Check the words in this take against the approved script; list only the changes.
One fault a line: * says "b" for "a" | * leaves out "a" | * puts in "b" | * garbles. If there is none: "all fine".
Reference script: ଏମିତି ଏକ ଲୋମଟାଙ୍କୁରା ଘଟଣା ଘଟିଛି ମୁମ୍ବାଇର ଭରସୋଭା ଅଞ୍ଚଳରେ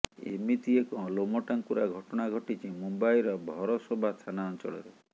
* puts in "ଥାନା"